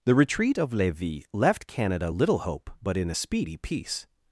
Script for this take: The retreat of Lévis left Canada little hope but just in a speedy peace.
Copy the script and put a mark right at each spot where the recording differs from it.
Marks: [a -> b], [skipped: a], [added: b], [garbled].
The retreat of Lévis left Canada little hope but [skipped: just] in a speedy peace.